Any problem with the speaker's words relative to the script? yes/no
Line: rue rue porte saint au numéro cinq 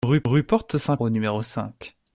no